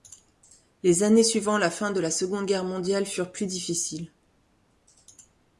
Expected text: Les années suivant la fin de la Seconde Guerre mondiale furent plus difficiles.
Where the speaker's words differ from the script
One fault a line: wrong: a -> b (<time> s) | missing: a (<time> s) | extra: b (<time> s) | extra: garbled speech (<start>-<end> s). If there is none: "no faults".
no faults